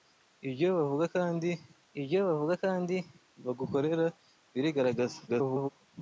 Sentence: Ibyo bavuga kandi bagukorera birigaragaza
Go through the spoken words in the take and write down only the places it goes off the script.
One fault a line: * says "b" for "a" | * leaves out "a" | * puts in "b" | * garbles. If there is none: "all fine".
* puts in "ibyo bavuga kandi"
* garbles